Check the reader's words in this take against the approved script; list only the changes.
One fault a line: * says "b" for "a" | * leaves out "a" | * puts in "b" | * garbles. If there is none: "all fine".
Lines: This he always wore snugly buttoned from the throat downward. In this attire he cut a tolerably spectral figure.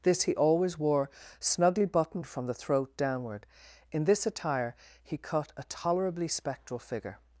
all fine